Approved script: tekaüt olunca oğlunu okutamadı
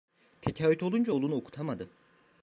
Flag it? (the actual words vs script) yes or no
no